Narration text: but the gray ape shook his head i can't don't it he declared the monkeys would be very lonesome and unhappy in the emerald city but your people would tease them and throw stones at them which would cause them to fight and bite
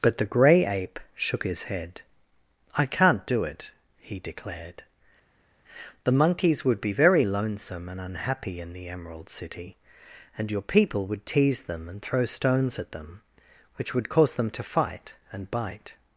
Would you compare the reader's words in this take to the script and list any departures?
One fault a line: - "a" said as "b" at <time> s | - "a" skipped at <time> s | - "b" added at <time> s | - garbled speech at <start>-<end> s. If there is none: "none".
- "don't" said as "do" at 3.3 s
- "but" said as "and" at 10.4 s